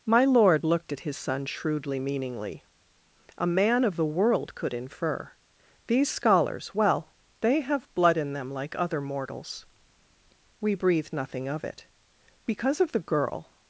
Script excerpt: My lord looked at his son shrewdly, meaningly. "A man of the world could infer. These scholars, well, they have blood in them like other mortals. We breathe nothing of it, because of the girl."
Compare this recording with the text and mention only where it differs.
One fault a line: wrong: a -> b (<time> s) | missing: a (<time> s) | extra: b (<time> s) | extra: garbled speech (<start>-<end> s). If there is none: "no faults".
no faults